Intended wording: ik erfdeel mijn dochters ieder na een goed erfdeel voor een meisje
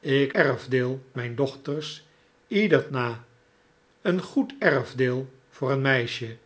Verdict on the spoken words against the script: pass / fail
pass